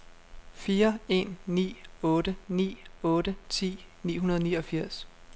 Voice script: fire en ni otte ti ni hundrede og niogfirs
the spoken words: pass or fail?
fail